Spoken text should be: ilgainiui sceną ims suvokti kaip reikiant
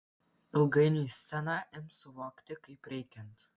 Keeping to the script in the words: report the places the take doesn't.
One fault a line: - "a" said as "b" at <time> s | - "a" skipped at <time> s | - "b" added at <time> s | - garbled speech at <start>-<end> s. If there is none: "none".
none